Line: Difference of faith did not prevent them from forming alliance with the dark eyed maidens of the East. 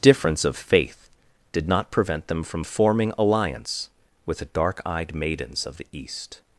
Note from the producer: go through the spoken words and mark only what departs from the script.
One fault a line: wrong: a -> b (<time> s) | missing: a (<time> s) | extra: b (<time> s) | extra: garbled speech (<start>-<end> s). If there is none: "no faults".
no faults